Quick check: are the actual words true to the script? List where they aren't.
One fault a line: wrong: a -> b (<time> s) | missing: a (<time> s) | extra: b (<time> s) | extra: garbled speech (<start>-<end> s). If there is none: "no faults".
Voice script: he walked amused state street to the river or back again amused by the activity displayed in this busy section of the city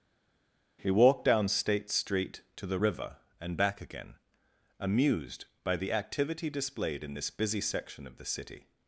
wrong: amused -> down (1.2 s)
wrong: or -> and (3.4 s)